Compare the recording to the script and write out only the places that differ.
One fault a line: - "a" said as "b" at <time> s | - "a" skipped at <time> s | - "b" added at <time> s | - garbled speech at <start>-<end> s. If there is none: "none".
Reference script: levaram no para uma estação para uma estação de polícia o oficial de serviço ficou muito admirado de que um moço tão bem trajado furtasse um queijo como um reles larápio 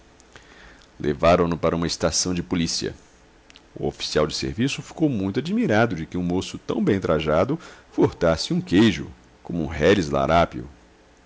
- "para uma estação" skipped at 2.3 s